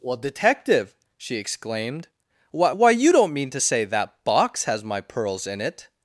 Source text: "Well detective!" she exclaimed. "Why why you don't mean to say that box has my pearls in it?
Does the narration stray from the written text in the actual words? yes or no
no